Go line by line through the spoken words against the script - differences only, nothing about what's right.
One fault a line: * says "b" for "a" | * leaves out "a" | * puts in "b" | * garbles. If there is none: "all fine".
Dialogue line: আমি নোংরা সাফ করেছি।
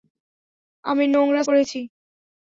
* leaves out "সাফ"